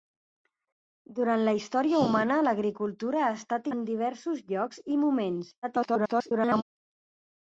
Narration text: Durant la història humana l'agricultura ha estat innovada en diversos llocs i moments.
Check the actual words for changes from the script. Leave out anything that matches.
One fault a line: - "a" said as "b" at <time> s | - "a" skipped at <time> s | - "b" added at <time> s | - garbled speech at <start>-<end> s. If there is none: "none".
- "innovada" skipped at 3.7 s
- garbled speech at 5.6-6.6 s